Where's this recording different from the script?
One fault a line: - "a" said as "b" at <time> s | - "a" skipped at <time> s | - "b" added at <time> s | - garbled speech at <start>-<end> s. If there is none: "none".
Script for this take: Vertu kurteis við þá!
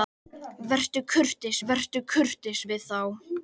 - "vertu kurteis" added at 1.7 s